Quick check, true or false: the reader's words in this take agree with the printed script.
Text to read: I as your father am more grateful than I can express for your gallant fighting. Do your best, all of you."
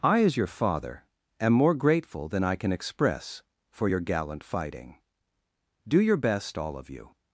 true